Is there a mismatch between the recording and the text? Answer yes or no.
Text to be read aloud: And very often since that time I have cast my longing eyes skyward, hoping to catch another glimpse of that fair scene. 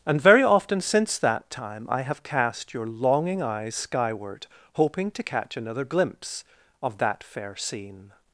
yes